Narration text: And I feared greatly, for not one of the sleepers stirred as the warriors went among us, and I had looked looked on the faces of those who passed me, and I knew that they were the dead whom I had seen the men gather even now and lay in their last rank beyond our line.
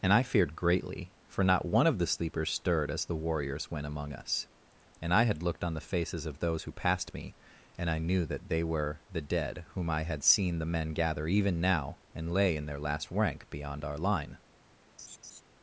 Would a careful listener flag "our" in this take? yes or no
no